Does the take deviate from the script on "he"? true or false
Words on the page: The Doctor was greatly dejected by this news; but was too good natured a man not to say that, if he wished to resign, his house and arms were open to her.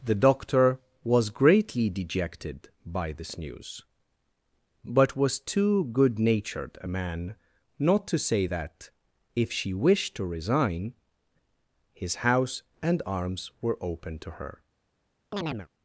true